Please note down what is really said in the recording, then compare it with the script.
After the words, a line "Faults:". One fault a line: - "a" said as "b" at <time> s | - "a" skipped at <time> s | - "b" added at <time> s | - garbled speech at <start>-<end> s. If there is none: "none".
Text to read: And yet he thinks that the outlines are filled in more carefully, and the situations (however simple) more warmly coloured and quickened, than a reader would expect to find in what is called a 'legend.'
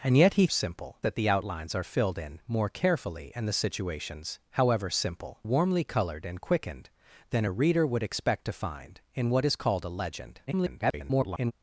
And yet he simple that the outlines are filled in more carefully, and the situations (however simple) warmly coloured and quickened, than a reader would expect to find in what is called a 'legend.' [garbled]
Faults:
- "thinks" said as "simple" at 0.5 s
- "more" skipped at 5.4 s
- garbled speech at 10.5-11.5 s